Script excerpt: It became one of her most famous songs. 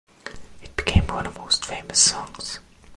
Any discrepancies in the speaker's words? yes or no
yes